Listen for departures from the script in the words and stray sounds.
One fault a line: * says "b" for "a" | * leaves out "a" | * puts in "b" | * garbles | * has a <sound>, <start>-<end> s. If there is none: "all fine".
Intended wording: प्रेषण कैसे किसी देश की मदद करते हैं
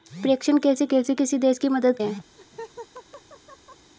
* puts in "कैसे"
* leaves out "करते"
* has a laugh, 2.3-3.9 s